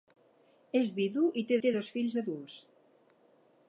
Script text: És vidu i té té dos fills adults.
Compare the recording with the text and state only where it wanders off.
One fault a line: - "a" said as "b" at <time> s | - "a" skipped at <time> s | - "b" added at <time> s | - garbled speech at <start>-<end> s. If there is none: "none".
none